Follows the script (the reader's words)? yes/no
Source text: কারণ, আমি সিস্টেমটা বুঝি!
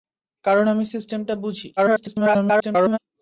no